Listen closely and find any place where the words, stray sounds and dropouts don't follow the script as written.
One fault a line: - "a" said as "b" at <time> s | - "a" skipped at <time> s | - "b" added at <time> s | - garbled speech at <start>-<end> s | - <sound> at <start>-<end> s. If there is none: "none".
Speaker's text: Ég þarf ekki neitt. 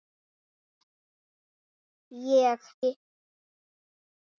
- "þarf ekki" skipped at 2.7 s